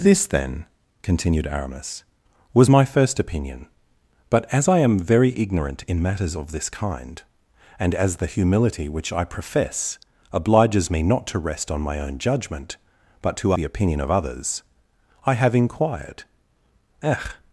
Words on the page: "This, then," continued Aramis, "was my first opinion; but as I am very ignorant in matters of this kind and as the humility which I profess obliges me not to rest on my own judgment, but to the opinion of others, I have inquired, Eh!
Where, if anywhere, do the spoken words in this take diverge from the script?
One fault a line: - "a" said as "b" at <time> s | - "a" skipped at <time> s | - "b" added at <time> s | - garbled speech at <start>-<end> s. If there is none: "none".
none